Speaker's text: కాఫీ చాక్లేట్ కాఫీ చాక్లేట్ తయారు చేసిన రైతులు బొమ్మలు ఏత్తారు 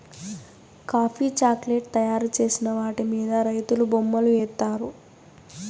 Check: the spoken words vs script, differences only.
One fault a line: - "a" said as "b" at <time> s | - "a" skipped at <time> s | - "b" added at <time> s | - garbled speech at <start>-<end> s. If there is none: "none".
- "కాఫీ చాక్లేట్ తయారు చేసిన" said as "తయారు చేసిన వాటి మీద" at 1.9 s